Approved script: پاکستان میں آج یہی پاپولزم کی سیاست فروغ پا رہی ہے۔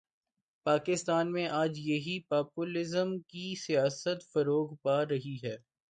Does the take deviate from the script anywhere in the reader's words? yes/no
no